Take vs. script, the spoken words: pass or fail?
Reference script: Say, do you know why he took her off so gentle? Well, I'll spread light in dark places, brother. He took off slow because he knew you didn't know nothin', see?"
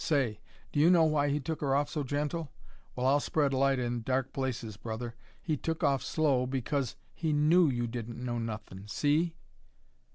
pass